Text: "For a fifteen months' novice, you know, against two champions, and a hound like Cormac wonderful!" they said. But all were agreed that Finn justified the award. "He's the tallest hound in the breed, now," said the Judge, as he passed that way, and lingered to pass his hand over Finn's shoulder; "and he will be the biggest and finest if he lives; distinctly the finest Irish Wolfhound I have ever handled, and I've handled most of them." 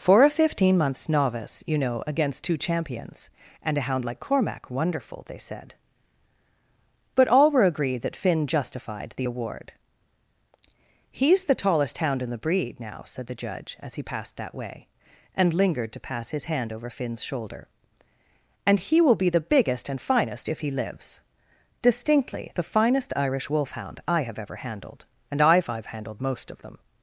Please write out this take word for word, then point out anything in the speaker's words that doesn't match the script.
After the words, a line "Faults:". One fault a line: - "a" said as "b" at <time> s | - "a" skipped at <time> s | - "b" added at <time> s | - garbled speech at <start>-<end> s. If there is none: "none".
"For a fifteen months' novice, you know, against two champions, and a hound like Cormac wonderful!" they said. But all were agreed that Finn justified the award. "He's the tallest hound in the breed, now," said the Judge, as he passed that way, and lingered to pass his hand over Finn's shoulder; "and he will be the biggest and finest if he lives; distinctly the finest Irish Wolfhound I have ever handled, and I've I've handled most of them."
Faults:
- "I've" added at 25.7 s